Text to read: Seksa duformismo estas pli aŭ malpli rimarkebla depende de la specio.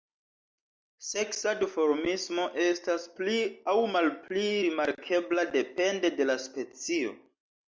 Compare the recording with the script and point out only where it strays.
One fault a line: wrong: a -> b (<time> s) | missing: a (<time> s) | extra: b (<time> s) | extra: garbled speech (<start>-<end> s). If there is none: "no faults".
no faults